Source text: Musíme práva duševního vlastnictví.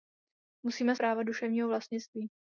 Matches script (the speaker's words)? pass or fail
pass